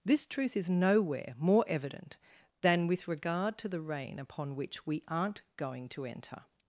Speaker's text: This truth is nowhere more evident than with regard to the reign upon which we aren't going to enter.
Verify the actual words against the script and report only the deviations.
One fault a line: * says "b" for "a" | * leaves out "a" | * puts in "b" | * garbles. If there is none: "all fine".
all fine